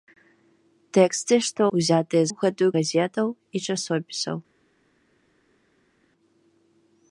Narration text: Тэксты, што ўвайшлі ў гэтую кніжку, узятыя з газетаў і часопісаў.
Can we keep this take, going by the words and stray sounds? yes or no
no